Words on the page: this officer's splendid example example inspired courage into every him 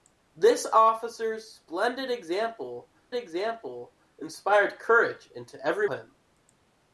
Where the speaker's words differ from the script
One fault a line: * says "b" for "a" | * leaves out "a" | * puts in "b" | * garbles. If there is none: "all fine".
all fine